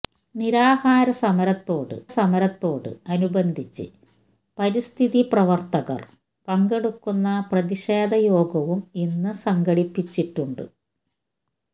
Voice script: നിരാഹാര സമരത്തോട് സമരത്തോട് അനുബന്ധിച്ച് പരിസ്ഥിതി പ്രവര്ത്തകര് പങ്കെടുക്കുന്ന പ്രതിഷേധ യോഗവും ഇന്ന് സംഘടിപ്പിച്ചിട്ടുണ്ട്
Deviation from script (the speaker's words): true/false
false